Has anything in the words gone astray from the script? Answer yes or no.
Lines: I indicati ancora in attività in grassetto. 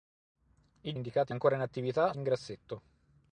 no